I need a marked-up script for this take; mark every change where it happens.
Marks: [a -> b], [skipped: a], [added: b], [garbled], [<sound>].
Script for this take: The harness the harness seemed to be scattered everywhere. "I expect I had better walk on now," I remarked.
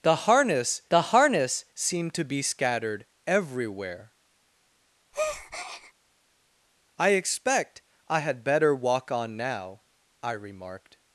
The harness the harness seemed to be scattered everywhere. [breath] "I expect I had better walk on now," I remarked.